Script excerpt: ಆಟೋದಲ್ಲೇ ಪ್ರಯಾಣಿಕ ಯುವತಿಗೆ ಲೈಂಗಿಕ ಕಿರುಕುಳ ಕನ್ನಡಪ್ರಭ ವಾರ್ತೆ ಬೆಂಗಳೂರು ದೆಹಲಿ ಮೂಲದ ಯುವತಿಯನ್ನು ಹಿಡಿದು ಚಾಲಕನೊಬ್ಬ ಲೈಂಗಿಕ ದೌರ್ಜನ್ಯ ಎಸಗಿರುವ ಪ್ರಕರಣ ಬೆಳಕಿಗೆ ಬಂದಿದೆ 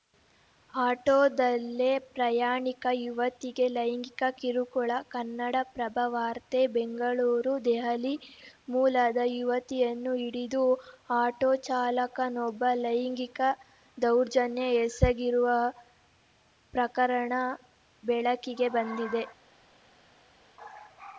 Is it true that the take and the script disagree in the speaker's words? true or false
true